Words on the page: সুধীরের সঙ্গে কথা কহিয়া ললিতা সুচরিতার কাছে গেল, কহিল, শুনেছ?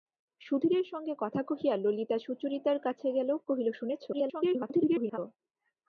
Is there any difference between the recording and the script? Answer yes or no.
yes